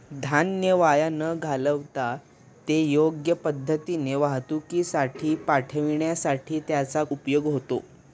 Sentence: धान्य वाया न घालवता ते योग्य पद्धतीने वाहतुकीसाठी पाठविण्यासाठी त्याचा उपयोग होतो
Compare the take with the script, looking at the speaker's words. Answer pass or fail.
pass